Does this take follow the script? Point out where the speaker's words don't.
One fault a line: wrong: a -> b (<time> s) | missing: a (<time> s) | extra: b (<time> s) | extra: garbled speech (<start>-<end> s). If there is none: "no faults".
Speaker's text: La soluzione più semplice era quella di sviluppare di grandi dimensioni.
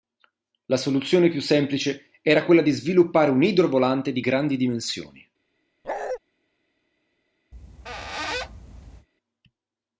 extra: un idrovolante (3.3 s)